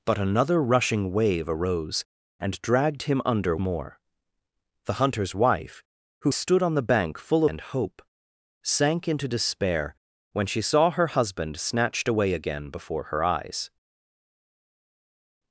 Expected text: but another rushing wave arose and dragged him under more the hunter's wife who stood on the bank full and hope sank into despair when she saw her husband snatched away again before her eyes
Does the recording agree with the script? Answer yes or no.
yes